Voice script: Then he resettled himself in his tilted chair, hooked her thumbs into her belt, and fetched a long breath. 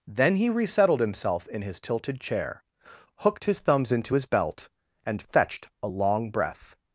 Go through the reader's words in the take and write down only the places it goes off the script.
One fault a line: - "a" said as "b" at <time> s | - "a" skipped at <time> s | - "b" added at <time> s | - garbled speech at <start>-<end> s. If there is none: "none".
- "her" said as "his" at 3.5 s
- "her" said as "his" at 4.1 s